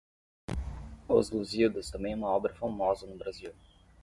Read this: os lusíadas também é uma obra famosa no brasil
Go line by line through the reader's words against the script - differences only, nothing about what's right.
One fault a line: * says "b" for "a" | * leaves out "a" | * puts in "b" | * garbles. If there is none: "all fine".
all fine